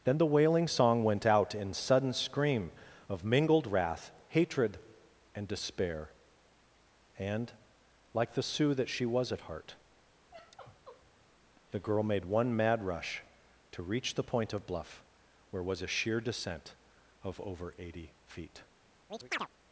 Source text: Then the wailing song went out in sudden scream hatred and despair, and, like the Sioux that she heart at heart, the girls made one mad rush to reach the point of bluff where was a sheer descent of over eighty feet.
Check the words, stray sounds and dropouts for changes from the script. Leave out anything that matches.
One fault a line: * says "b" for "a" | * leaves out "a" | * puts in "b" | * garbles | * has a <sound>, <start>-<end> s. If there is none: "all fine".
* puts in "of mingled wrath"
* says "was" for "heart"
* has a sigh, 10.3-11.2 s
* says "girl" for "girls"
* has a chirp, 19.1-19.5 s